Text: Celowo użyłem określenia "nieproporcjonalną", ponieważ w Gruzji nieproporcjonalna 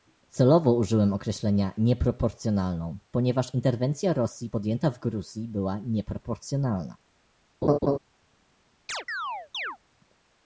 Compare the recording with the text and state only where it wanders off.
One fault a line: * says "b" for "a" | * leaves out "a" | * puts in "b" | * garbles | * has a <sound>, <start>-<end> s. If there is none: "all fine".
* puts in "interwencja Rosji podjęta"
* puts in "była"
* has a laugh, 7.6-8.0 s
* has a chirp, 8.9-9.8 s